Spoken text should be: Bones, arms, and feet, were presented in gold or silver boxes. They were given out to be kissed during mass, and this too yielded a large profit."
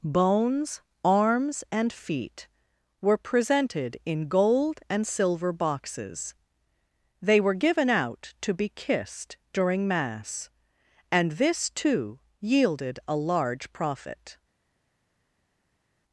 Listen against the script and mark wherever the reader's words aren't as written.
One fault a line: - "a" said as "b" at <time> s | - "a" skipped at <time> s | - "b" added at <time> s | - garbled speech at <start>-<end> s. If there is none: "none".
- "or" said as "and" at 4.9 s